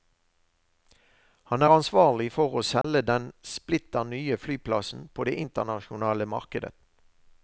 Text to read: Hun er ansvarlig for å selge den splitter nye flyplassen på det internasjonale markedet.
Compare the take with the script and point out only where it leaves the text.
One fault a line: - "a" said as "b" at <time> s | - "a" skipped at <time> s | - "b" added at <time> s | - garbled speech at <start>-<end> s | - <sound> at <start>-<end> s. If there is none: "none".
- "Hun" said as "Han" at 1.5 s
- dropout at 2.8-2.8 s